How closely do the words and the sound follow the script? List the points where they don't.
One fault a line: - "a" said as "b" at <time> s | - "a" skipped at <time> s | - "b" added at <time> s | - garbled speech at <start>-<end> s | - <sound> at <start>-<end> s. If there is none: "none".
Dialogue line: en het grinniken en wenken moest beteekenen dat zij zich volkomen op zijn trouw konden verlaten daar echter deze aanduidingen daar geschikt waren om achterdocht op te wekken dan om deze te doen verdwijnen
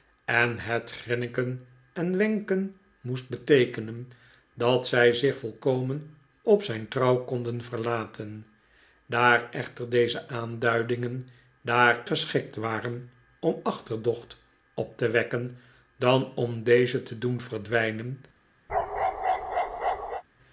- bark at 18.7-20.2 s